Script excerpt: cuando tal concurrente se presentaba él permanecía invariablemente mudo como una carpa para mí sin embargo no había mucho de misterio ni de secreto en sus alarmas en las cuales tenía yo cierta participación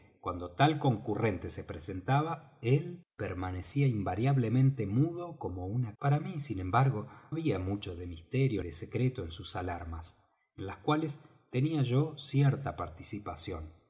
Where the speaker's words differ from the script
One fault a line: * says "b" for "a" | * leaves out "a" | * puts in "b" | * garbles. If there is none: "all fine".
* leaves out "carpa"
* leaves out "no"
* leaves out "ni"